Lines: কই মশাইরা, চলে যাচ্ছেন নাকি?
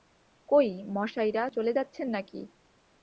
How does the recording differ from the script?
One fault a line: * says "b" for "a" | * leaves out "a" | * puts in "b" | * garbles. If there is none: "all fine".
all fine